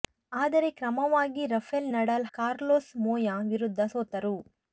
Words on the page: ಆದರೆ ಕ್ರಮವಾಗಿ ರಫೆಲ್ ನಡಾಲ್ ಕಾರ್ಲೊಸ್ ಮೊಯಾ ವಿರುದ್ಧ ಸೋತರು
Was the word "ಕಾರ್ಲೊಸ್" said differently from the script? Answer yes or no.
no